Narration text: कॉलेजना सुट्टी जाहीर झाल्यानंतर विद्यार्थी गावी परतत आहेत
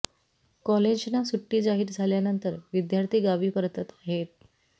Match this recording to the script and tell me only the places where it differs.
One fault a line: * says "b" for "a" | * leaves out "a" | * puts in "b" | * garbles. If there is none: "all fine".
all fine